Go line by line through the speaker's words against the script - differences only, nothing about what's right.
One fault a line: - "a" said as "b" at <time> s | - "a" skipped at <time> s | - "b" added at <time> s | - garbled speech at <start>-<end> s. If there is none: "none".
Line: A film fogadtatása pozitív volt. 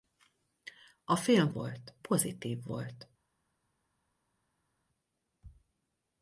- "fogadtatása" said as "volt" at 1.5 s